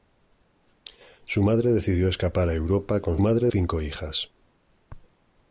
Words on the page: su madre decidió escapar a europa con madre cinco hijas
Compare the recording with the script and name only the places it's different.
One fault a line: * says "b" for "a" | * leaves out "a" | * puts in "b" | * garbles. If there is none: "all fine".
all fine